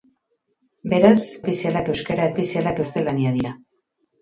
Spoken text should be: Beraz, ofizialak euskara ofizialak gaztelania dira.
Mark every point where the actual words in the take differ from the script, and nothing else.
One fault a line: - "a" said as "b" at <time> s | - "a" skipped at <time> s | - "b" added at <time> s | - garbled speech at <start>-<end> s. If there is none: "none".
none